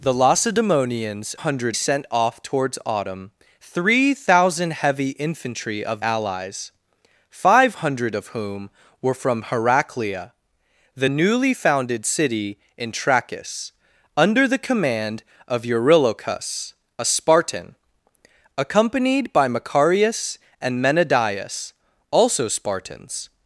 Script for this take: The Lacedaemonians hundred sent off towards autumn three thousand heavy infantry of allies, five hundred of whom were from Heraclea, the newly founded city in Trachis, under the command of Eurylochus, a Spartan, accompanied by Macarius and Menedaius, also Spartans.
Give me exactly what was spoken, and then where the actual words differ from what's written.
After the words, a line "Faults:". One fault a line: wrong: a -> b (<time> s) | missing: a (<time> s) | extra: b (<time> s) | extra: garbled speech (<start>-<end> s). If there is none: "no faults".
The Lacedaemonians hundred sent off towards autumn three thousand heavy infantry of allies, five hundred of whom were from Heraclea, the newly founded city in Trachis, under the command of Eurylochus, a Spartan, accompanied by Macarius and Menedaius, also Spartans.
Faults:
no faults